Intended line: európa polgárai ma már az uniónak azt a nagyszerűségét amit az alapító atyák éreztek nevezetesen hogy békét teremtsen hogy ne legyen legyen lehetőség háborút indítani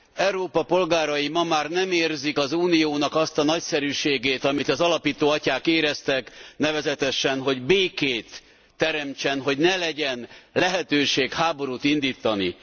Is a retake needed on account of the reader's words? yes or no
yes